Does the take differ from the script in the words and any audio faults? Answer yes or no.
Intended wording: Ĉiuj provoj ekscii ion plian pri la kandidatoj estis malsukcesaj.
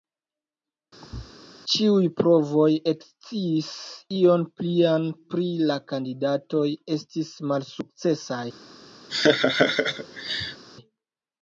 yes